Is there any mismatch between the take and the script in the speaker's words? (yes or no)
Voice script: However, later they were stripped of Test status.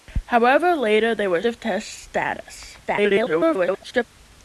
yes